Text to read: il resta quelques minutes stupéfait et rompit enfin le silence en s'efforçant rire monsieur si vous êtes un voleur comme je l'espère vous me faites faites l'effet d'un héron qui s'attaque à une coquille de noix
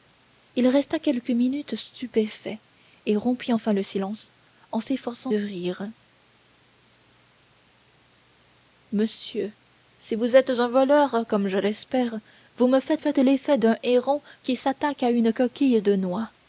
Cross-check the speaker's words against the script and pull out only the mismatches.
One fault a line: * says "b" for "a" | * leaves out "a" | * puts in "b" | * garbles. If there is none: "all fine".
all fine